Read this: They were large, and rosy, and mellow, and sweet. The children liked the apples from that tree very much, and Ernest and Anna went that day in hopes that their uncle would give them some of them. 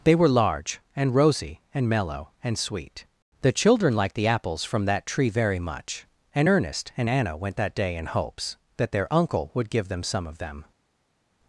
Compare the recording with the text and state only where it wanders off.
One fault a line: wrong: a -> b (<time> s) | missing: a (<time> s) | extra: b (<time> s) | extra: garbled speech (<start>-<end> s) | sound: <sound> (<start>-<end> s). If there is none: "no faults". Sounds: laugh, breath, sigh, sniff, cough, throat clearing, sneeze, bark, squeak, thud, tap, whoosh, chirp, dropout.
no faults